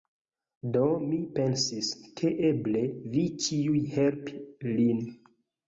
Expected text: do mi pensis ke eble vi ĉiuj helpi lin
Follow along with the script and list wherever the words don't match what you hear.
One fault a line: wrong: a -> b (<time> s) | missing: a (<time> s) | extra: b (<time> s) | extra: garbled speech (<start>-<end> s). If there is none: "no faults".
no faults